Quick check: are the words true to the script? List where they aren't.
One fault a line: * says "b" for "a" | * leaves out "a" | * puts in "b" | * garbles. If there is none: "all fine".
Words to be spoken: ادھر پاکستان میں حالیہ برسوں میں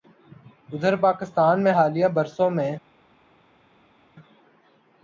all fine